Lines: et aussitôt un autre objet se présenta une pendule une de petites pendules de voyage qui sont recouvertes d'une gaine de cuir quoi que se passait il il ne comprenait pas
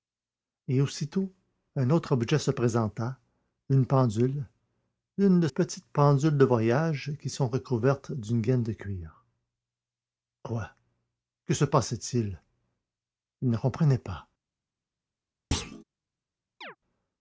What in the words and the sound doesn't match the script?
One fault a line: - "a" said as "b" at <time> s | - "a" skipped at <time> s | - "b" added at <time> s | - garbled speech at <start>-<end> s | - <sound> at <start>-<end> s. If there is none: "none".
- thud at 15.5-15.8 s
- chirp at 16.6-16.8 s